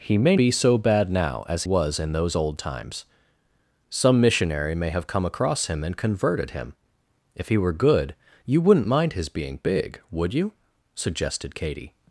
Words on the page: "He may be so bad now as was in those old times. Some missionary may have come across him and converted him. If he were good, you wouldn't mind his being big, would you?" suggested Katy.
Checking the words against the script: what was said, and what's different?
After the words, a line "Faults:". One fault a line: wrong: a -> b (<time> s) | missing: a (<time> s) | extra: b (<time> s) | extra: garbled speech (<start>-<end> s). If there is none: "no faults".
"He may be so bad now as was in those old times. Some missionary may have come across him and converted him. If he were good, you wouldn't mind his being big, would you?" suggested Katy.
Faults:
no faults